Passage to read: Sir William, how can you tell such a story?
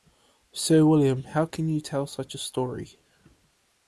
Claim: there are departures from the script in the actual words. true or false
false